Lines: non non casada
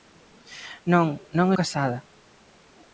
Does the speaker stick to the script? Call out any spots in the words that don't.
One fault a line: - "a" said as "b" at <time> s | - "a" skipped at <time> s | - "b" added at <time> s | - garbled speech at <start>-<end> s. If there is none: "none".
none